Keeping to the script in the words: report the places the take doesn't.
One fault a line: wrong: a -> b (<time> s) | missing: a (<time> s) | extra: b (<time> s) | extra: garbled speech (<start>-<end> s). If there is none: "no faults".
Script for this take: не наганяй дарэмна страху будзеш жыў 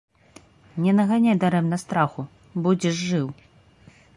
no faults